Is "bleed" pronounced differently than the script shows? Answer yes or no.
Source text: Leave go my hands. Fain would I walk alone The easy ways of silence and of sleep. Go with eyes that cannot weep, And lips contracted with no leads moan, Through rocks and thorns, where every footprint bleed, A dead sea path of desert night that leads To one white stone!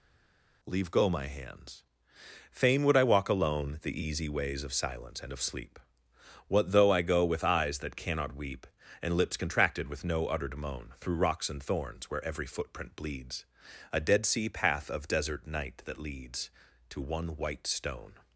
yes